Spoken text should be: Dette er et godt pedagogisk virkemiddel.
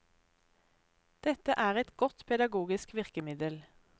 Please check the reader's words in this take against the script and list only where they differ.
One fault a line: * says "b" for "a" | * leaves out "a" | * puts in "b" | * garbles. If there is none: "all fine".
all fine